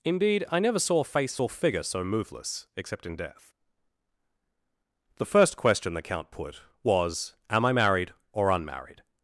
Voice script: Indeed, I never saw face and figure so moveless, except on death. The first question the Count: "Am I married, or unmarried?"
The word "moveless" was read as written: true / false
true